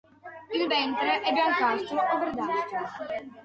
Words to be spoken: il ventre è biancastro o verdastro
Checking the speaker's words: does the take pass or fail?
pass